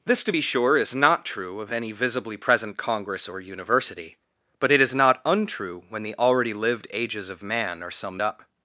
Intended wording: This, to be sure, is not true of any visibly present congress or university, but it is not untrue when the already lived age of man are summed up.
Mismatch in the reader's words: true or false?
true